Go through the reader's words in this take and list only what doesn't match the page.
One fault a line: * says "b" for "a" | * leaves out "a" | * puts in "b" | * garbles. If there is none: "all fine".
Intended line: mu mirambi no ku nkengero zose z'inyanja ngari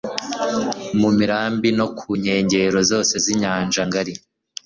all fine